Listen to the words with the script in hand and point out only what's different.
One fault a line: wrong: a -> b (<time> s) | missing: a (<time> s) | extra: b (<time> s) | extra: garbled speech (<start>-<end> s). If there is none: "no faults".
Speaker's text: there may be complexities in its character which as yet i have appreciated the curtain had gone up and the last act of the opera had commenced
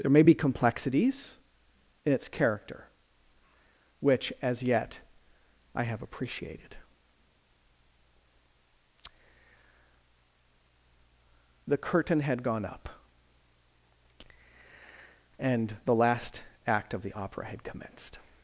no faults